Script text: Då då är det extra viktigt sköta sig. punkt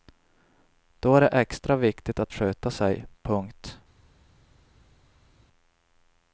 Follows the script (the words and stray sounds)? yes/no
no